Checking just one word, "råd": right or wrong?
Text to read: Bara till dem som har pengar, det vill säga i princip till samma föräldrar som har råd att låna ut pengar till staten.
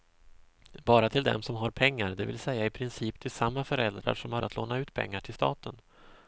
wrong